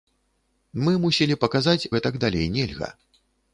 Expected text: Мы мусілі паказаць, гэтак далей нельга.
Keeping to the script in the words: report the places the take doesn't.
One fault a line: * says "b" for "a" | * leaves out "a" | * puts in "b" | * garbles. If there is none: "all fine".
all fine